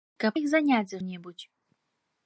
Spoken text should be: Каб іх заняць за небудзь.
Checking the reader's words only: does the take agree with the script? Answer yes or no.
yes